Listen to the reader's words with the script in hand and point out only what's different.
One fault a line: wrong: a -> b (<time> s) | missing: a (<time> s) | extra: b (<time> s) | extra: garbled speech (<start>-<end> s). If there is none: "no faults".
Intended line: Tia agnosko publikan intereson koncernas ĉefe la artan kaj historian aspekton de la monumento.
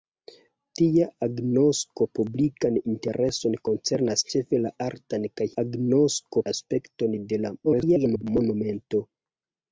wrong: historian -> agnosko (5.6 s)
extra: garbled speech (7.6-8.2 s)